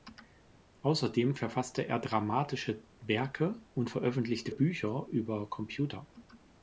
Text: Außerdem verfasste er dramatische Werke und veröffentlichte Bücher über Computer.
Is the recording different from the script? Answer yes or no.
no